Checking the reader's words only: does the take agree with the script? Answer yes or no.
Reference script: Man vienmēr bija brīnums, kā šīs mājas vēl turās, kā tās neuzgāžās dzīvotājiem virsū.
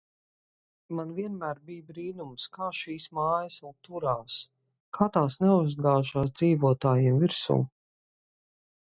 yes